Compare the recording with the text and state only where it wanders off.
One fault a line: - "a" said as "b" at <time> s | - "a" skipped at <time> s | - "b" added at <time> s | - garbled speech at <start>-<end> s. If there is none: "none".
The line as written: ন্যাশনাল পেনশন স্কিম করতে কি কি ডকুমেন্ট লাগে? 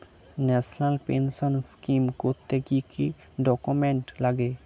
none